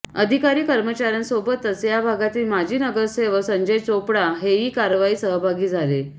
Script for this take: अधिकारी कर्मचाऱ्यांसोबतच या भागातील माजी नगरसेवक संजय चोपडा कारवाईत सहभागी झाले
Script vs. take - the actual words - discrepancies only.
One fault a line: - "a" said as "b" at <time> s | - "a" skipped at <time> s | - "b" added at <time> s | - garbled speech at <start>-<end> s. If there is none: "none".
- "हेही" added at 4.4 s